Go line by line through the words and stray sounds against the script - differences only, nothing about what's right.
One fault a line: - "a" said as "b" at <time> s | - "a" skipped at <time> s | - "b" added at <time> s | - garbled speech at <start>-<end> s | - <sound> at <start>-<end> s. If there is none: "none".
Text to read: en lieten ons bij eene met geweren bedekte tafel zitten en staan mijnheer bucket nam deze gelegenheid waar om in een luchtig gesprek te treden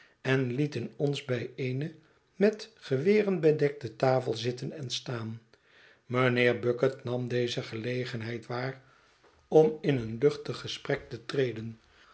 none